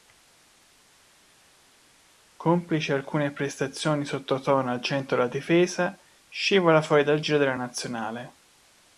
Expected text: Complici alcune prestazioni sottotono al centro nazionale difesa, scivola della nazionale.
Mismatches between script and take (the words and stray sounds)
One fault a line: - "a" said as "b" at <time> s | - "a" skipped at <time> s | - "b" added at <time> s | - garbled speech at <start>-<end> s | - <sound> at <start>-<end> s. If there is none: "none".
- "nazionale" said as "della" at 5.2 s
- "fuori dal giro" added at 6.8 s